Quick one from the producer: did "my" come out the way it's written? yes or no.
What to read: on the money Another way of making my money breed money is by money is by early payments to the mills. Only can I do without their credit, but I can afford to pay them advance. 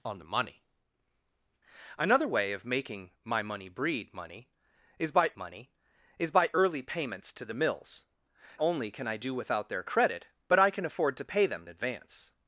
yes